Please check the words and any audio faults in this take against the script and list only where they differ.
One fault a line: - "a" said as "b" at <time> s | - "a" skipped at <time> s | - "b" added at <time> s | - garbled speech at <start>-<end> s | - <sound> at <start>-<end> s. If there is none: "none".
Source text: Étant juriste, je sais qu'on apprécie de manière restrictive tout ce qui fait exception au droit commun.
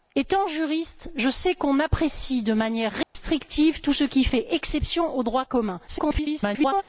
- dropout at 3.0-3.1 s
- garbled speech at 5.9-6.8 s